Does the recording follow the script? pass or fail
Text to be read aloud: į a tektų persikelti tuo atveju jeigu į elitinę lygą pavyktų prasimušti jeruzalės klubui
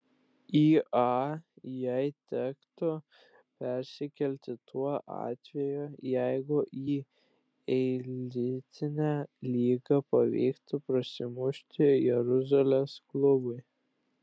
fail